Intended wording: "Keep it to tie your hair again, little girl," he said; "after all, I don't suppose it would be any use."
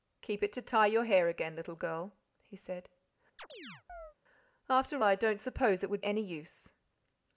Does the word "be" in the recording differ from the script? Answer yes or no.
yes